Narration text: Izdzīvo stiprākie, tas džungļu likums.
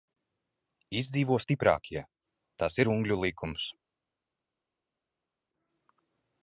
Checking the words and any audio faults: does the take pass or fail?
pass